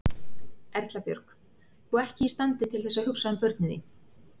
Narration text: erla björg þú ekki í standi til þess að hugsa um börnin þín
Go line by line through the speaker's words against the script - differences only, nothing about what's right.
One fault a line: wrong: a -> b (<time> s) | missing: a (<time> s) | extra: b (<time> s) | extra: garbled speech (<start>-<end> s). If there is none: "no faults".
no faults